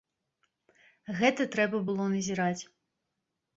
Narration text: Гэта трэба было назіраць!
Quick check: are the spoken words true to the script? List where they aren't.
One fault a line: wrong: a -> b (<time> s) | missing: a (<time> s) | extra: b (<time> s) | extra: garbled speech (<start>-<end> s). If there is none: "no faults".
no faults